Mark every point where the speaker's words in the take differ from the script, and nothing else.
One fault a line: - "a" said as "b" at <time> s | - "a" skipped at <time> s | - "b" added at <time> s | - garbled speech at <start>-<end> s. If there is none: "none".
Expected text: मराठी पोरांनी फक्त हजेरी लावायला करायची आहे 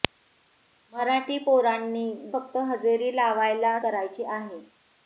none